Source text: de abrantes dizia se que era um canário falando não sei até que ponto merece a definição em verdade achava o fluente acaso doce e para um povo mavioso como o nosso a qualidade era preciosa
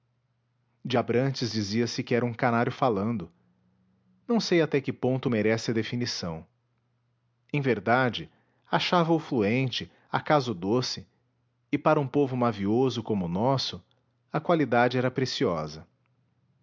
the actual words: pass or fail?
pass